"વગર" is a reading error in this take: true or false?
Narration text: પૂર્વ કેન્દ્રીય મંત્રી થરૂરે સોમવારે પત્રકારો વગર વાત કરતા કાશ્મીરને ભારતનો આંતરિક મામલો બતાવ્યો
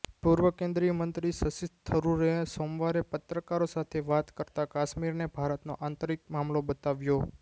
true